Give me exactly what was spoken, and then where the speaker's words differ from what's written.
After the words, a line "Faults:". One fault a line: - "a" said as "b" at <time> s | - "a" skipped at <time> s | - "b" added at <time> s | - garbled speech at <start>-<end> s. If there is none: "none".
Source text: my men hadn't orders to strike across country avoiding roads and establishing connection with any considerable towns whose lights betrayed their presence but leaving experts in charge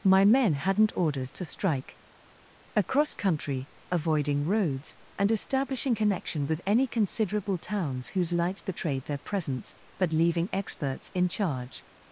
my men hadn't orders to strike across country avoiding roads and establishing connection with any considerable towns whose lights betrayed their presence but leaving experts in charge
Faults:
none